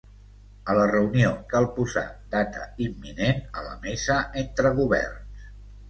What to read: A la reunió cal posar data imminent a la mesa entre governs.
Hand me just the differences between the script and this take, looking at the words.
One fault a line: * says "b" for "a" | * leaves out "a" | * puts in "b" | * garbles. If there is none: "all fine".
all fine